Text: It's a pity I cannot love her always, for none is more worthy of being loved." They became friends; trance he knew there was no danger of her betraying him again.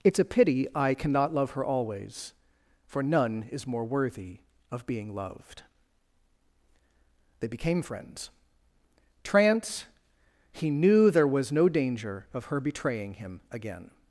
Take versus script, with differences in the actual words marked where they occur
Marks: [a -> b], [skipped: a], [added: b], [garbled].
It's a pity I cannot love her always, for none is more worthy of being loved." They became friends; trance he knew there was no danger of her betraying him again.